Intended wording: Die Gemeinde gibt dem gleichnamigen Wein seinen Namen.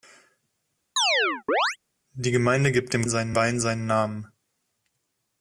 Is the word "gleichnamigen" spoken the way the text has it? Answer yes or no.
no